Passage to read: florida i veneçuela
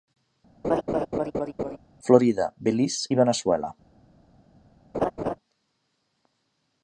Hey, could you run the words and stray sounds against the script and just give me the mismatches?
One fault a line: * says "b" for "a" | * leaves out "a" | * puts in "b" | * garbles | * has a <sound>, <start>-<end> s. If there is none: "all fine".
* has a laugh, 0.6-1.8 s
* puts in "belize"
* has a laugh, 4.9-5.4 s